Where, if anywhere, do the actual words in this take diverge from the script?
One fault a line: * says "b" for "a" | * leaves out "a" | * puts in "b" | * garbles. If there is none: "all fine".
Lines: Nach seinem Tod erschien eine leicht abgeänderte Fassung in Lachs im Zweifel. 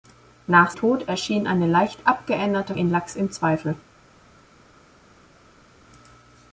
* leaves out "seinem"
* leaves out "Fassung"